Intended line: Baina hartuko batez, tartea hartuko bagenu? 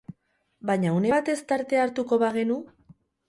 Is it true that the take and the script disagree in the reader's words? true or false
true